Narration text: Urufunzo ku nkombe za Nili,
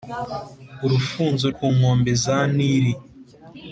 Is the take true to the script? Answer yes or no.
yes